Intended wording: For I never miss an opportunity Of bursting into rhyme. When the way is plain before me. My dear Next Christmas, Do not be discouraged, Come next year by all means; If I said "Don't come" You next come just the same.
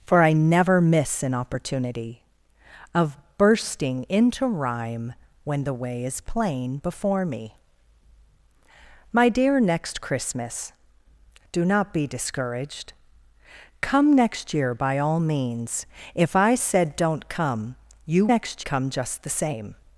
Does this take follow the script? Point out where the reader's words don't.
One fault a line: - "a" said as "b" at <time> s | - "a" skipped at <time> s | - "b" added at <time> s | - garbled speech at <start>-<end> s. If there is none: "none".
none